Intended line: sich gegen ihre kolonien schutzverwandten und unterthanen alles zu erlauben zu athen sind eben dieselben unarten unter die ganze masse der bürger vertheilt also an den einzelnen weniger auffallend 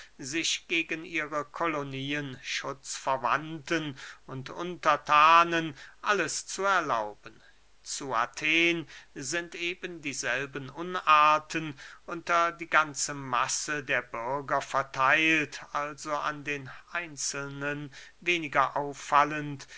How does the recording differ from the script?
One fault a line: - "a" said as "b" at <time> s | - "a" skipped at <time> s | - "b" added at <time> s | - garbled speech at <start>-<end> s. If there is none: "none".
none